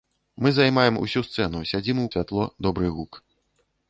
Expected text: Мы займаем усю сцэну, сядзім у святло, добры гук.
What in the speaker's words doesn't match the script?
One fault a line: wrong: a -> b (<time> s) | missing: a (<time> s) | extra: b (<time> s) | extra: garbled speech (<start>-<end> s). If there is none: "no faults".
no faults